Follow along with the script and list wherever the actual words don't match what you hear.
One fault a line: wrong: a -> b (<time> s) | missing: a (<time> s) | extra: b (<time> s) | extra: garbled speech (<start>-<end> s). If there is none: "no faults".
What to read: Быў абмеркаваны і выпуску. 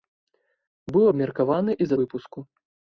no faults